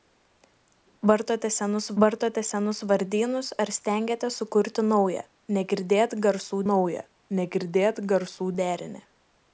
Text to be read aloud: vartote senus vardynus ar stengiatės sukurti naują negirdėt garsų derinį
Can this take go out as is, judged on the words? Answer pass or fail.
fail